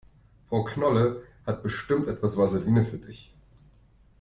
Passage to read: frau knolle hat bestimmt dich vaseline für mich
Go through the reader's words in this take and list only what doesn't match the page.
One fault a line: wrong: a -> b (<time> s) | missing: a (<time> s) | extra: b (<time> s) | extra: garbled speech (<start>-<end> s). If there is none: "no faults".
wrong: dich -> etwas (2.1 s)
wrong: mich -> dich (3.0 s)